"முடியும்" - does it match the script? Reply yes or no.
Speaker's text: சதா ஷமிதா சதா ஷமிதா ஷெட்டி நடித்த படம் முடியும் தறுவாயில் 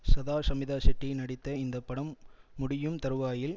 yes